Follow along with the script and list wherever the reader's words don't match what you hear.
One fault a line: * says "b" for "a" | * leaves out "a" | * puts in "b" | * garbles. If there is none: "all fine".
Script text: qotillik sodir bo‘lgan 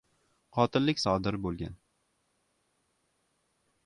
all fine